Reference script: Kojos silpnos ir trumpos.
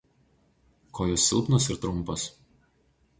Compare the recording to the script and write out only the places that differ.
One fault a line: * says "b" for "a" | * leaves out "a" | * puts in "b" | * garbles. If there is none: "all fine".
all fine